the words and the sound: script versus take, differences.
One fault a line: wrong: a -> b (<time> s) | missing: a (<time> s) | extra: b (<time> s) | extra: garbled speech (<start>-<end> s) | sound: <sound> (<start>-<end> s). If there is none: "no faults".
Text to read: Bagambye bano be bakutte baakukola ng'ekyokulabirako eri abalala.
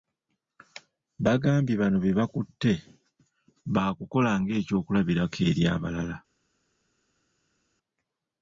no faults